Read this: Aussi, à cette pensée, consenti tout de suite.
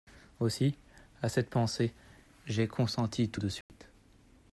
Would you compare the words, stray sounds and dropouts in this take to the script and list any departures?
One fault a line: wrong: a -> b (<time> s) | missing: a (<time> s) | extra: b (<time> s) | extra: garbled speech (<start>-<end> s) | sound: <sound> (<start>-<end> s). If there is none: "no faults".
extra: j'ai (2.5 s)
sound: dropout (3.6-3.7 s)